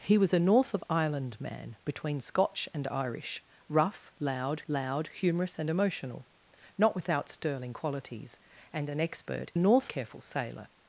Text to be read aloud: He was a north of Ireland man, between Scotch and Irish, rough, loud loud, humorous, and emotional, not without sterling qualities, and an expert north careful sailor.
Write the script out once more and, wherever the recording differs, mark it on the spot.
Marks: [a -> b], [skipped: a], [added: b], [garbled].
He was a north of Ireland man, between Scotch and Irish, rough, loud loud, humorous, and emotional, not without sterling qualities, and an expert north careful sailor.